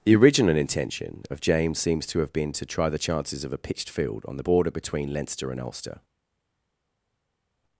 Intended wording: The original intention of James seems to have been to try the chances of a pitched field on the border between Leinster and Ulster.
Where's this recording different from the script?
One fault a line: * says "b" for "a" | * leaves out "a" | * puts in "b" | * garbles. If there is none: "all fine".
all fine